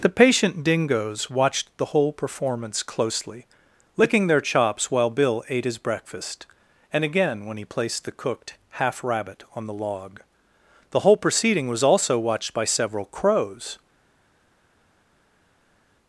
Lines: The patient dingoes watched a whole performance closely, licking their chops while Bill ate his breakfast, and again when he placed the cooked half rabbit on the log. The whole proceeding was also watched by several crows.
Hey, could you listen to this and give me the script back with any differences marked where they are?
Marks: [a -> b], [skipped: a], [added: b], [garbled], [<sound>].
The patient dingoes watched [a -> the] whole performance closely, licking their chops while Bill ate his breakfast, and again when he placed the cooked half rabbit on the log. The whole proceeding was also watched by several crows.